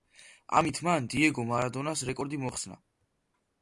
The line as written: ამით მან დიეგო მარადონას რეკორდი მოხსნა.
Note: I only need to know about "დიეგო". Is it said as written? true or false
true